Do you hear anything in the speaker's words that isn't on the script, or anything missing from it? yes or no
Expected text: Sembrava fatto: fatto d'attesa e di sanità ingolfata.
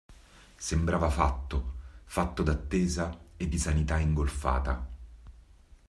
no